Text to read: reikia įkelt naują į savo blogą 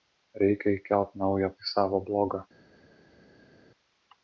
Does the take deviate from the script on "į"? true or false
false